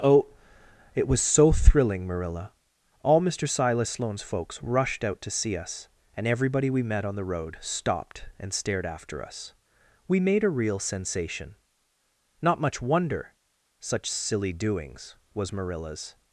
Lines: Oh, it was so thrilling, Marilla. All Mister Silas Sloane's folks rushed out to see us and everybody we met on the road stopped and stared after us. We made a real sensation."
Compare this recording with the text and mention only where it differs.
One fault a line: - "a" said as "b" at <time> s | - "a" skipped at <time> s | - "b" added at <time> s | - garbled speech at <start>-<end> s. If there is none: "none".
- "Not much wonder Such silly doings was Marilla's" added at 12.4 s